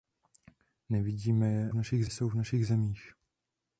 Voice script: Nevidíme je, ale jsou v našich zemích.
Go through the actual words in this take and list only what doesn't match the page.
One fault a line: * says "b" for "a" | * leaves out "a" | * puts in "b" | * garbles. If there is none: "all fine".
* says "našich" for "ale"